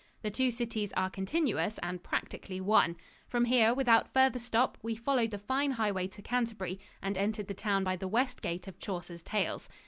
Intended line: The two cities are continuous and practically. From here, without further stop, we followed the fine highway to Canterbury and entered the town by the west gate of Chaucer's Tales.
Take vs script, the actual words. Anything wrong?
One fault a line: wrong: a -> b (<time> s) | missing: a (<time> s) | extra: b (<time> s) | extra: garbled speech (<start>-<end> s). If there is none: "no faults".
extra: one (2.6 s)